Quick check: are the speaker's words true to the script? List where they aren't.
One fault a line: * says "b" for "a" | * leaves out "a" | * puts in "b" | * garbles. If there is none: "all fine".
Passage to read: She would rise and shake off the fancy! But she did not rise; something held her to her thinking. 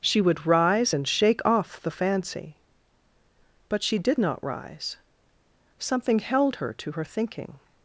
all fine